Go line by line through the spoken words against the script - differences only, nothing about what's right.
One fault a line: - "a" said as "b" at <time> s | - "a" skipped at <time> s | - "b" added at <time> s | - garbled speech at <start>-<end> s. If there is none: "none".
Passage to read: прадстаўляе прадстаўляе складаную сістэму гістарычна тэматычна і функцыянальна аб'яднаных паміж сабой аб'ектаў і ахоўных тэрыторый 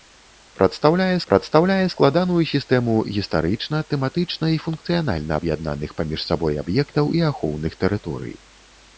none